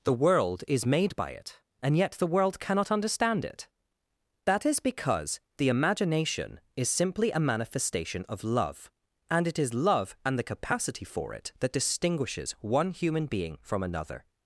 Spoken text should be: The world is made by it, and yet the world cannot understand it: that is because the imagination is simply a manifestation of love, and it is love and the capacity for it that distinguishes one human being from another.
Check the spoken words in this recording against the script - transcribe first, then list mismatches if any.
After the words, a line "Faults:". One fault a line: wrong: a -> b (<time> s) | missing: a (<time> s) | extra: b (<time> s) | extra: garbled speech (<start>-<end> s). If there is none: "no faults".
The world is made by it, and yet the world cannot understand it: that is because the imagination is simply a manifestation of love, and it is love and the capacity for it that distinguishes one human being from another.
Faults:
no faults